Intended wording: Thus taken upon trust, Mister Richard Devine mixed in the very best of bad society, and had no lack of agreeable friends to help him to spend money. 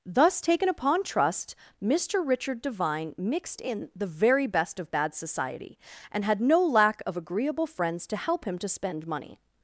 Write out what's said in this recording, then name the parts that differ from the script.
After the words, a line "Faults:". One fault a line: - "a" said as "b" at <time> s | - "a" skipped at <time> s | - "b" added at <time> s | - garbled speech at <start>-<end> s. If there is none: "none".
Thus taken upon trust, Mister Richard Devine mixed in the very best of bad society, and had no lack of agreeable friends to help him to spend money.
Faults:
none